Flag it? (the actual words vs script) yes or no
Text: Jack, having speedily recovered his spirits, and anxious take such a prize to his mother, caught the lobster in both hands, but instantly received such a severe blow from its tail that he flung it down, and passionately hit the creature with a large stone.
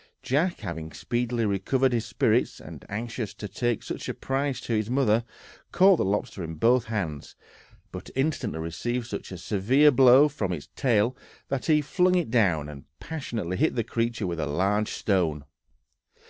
yes